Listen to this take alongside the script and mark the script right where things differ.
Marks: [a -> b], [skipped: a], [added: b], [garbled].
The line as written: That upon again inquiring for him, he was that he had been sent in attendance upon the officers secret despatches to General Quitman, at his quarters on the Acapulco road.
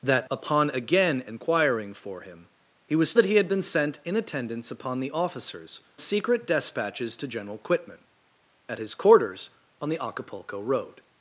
That upon again inquiring for him, he was that he had been sent in attendance upon the officers secret despatches to General Quitman, at his quarters on the Acapulco road.